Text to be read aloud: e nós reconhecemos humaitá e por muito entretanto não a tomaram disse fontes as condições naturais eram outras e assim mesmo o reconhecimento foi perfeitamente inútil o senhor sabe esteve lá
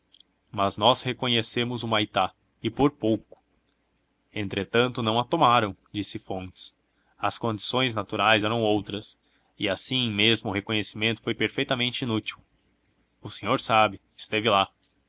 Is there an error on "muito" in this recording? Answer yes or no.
yes